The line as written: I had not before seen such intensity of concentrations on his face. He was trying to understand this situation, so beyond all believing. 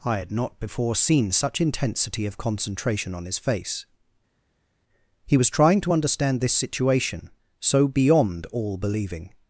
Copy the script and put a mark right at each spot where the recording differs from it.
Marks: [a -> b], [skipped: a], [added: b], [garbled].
I had not before seen such intensity of [concentrations -> concentration] on his face. He was trying to understand this situation, so beyond all believing.